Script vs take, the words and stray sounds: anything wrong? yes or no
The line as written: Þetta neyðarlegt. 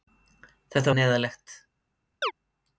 yes